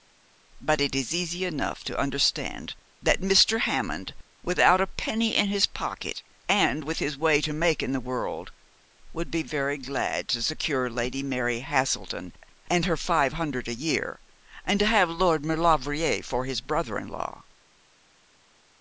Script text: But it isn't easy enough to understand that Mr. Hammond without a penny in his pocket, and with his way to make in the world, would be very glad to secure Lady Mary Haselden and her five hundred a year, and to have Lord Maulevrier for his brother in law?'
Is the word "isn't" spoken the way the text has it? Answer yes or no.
no